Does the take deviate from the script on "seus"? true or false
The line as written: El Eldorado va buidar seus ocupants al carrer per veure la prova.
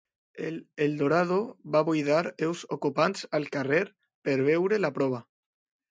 false